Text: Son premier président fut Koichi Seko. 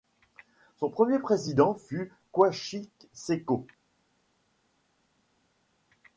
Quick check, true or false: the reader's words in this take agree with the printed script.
true